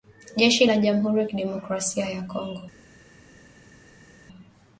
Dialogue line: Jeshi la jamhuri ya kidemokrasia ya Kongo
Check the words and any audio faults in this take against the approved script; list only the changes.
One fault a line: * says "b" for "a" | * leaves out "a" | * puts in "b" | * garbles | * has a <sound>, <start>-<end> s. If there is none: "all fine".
all fine